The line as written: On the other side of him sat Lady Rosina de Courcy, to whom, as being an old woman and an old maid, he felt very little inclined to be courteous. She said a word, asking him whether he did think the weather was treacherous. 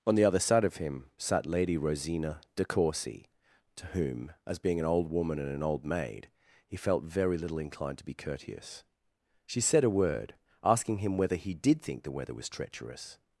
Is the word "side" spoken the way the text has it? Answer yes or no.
yes